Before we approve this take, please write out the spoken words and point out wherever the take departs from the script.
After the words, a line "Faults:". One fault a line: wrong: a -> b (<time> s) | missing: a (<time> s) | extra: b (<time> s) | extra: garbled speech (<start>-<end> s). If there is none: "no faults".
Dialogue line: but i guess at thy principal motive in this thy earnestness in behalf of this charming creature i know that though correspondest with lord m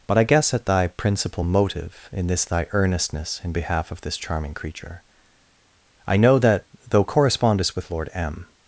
but i guess at thy principal motive in this thy earnestness in behalf of this charming creature i know that though correspondest with lord m
Faults:
no faults